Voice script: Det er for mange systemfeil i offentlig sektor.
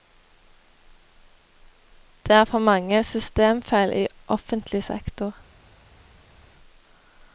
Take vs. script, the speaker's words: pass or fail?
pass